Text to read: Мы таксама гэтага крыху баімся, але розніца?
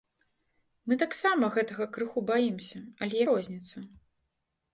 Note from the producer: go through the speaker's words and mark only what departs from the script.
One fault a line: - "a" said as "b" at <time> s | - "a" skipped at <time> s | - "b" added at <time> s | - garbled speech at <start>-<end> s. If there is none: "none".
none